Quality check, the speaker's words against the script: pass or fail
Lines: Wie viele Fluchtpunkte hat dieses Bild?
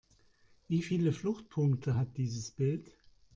pass